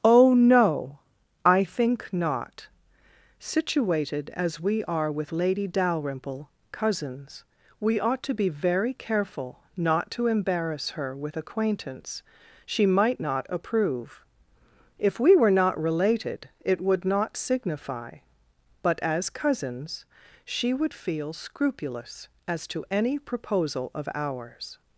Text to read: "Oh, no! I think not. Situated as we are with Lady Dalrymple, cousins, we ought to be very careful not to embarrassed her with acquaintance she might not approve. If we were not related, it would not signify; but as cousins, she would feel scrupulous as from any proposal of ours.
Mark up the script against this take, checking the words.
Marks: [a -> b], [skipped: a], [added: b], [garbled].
"Oh, no! I think not. Situated as we are with Lady Dalrymple, cousins, we ought to be very careful not to [embarrassed -> embarrass] her with acquaintance she might not approve. If we were not related, it would not signify; but as cousins, she would feel scrupulous as [from -> to] any proposal of ours.